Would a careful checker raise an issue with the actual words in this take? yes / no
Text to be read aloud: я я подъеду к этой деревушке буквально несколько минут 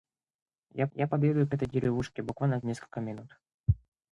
no